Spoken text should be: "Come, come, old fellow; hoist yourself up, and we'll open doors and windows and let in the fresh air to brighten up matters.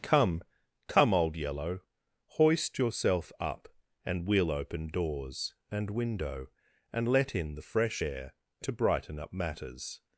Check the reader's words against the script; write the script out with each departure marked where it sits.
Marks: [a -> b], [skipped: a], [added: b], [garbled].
"Come, come, old [fellow; -> yellow] hoist yourself up, and we'll open doors and [windows -> window] and let in the fresh air to brighten up matters.